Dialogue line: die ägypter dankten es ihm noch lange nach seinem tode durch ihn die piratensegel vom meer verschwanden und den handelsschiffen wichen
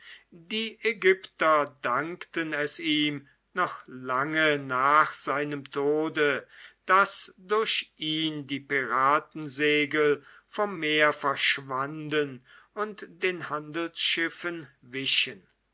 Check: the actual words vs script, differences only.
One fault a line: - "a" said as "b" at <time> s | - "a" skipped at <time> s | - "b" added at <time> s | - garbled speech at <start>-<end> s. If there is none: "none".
- "daß" added at 6.8 s